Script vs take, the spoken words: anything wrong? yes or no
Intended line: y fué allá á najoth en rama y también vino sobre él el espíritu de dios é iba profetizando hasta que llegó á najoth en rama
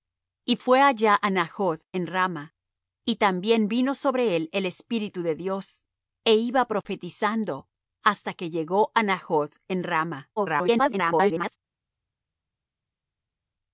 yes